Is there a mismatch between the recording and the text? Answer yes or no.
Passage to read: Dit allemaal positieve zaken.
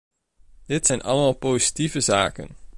yes